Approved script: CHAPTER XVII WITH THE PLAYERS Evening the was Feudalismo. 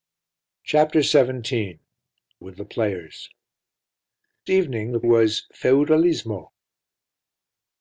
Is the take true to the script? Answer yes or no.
yes